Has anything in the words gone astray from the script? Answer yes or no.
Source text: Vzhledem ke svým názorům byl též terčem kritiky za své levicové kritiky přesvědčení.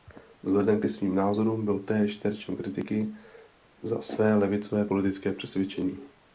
yes